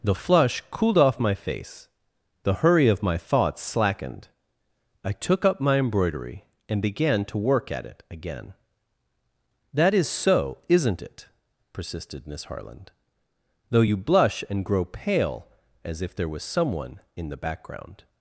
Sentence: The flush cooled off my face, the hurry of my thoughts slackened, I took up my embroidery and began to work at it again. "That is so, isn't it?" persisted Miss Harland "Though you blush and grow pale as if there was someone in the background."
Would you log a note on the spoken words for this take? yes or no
no